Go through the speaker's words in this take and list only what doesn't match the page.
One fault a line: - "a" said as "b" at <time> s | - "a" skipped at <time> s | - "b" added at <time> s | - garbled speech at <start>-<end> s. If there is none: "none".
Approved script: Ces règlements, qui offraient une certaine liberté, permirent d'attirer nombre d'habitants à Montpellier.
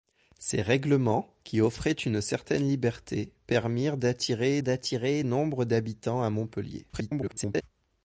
- "d'attirer" added at 4.6 s
- garbled speech at 6.9-7.6 s